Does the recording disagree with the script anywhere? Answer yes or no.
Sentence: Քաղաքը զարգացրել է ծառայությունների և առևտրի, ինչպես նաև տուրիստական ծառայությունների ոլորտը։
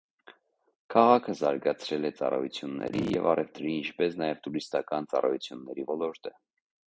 no